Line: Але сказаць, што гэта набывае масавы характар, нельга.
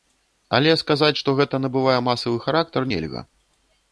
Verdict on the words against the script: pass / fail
pass